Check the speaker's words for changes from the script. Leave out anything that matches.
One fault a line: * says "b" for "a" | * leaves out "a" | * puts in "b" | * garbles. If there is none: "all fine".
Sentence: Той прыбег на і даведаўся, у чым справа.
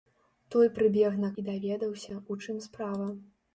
all fine